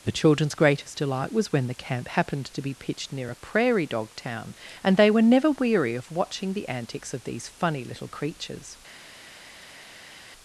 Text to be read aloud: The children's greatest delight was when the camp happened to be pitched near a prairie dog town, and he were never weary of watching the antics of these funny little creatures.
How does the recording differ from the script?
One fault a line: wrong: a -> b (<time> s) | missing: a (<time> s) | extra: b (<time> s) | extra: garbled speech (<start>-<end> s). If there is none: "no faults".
wrong: he -> they (5.0 s)